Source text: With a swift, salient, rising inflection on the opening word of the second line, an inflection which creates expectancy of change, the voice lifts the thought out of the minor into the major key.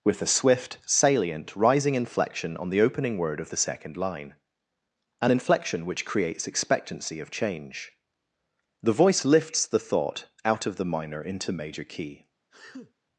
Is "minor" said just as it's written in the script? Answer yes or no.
yes